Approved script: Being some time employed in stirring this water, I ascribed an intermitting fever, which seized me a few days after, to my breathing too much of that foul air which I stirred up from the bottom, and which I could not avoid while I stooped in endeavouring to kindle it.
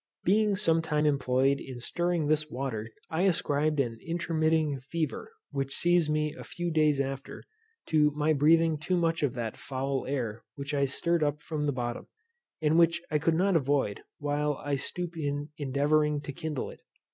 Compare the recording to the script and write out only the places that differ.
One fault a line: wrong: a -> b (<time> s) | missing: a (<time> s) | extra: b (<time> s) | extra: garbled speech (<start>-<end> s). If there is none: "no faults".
no faults